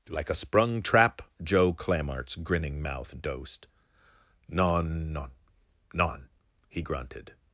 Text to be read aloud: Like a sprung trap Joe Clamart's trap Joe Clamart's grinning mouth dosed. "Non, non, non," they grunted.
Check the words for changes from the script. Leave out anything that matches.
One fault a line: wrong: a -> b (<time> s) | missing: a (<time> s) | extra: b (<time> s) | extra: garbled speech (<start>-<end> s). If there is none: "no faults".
missing: trap Joe Clamart's (2.4 s)
wrong: they -> he (6.7 s)